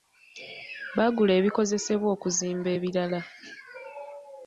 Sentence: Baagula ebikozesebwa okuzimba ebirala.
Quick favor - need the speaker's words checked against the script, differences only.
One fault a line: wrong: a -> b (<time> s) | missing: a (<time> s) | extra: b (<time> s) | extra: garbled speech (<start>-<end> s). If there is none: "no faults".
no faults